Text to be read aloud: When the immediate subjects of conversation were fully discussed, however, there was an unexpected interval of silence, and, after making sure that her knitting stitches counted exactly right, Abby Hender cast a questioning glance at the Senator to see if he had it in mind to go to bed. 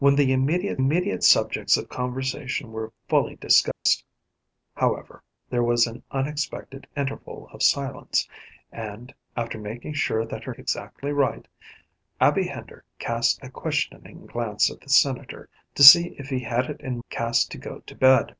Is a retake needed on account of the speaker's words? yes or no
yes